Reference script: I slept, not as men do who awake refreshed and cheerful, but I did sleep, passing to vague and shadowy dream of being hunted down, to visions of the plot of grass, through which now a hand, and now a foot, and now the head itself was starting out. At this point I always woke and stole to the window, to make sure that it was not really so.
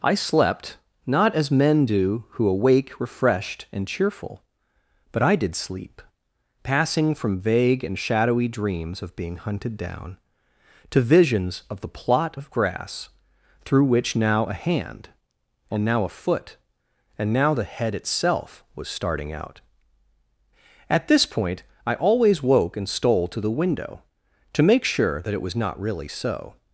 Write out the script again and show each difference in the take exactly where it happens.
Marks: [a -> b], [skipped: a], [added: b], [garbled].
I slept, not as men do who awake refreshed and cheerful, but I did sleep, passing [to -> from] vague and shadowy [dream -> dreams] of being hunted down, to visions of the plot of grass, through which now a hand, and now a foot, and now the head itself was starting out. At this point I always woke and stole to the window, to make sure that it was not really so.